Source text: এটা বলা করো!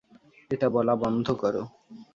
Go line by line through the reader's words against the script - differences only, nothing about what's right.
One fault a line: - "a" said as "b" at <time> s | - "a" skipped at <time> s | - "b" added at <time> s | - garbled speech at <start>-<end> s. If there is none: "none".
- "বন্ধ" added at 1.0 s